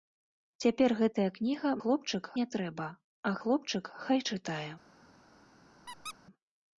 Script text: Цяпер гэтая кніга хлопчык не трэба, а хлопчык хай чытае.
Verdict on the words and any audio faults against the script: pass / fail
fail